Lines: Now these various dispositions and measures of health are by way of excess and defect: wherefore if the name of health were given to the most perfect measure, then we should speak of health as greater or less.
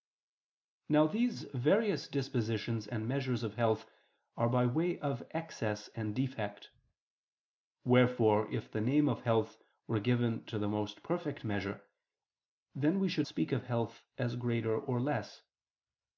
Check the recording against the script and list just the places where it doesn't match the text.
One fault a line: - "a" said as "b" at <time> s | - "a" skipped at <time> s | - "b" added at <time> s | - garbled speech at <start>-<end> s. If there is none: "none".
none